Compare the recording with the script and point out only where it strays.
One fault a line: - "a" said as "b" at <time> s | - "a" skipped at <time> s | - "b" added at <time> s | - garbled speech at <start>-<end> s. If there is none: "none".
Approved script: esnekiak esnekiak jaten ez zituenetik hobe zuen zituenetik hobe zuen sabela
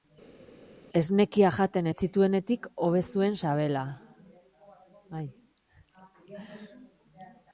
- "esnekiak" skipped at 1.6 s
- "zituenetik hobe zuen" skipped at 3.3 s